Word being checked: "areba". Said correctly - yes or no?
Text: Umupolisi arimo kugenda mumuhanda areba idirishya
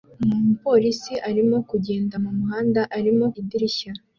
no